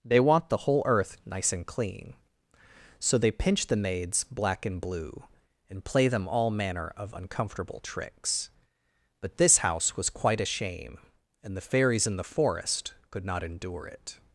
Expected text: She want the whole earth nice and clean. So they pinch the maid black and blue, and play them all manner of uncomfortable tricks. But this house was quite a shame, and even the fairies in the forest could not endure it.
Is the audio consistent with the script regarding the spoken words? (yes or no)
no